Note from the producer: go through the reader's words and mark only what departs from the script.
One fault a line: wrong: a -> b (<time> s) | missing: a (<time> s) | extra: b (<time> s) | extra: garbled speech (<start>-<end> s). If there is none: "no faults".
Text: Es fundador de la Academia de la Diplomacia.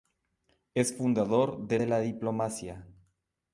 missing: la Academia (1.8 s)